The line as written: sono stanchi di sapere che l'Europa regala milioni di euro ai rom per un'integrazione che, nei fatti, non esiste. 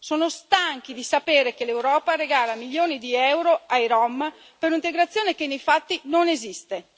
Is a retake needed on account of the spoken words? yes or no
no